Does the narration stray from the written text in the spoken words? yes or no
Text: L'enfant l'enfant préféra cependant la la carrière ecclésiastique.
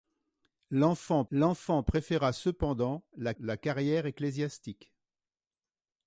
no